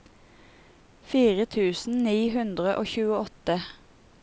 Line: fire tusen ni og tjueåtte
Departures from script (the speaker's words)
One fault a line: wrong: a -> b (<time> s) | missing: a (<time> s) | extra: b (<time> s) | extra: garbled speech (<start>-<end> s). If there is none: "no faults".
extra: hundre (2.4 s)